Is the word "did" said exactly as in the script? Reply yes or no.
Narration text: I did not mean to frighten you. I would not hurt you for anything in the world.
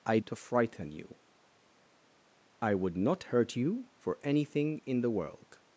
no